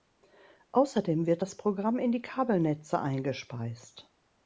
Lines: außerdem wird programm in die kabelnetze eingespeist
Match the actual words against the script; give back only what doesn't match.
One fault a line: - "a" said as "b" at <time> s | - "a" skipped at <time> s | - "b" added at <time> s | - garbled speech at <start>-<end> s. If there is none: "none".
- "das" added at 1.4 s